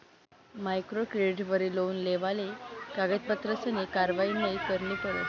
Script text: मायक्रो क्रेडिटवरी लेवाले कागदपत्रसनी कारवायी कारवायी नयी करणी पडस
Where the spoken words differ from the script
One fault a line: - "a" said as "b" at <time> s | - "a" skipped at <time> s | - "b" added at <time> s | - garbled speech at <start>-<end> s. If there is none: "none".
- "लोन" added at 1.8 s
- "कारवायी" skipped at 4.3 s